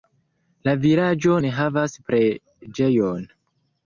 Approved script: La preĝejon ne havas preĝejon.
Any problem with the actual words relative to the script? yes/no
yes